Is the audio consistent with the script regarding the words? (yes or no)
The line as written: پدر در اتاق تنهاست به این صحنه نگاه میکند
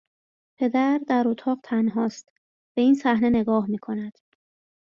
yes